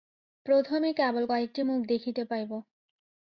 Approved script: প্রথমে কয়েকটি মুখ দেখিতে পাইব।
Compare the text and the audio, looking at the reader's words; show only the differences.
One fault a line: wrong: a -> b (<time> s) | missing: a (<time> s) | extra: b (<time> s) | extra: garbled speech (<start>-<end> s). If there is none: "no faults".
extra: কেবল (0.9 s)